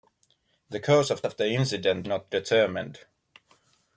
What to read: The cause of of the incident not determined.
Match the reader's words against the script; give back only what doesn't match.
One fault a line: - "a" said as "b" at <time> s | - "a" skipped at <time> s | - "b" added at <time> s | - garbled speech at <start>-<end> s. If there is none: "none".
none